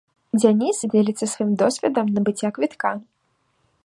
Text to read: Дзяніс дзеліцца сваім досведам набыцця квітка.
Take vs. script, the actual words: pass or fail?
pass